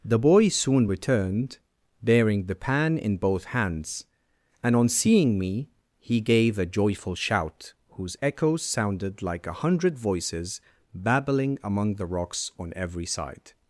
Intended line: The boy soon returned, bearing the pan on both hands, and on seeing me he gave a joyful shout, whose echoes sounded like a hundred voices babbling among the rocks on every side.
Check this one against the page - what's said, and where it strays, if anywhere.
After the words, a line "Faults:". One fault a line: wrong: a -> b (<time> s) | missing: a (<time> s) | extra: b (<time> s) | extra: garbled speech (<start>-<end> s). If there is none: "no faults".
The boy soon returned, bearing the pan in both hands, and on seeing me he gave a joyful shout, whose echoes sounded like a hundred voices babbling among the rocks on every side.
Faults:
wrong: on -> in (3.0 s)